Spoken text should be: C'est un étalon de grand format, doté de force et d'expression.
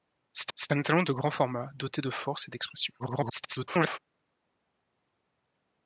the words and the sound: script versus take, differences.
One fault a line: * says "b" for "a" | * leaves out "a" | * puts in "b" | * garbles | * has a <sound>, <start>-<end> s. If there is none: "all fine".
* puts in "c'est"
* garbles